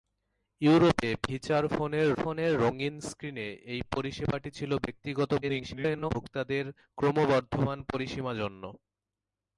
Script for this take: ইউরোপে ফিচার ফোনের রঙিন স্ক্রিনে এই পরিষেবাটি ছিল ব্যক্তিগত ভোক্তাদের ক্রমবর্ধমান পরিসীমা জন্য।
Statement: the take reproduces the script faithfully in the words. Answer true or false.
false